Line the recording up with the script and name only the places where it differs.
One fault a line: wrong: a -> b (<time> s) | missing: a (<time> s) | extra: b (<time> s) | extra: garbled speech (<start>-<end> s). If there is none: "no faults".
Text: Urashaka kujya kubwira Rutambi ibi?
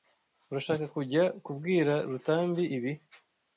no faults